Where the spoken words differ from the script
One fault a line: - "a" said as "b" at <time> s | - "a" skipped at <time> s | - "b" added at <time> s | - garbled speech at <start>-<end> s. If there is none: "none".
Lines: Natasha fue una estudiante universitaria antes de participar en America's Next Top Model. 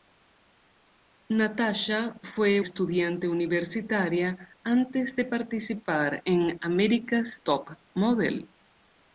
- "una" skipped at 2.6 s
- "Next" skipped at 7.4 s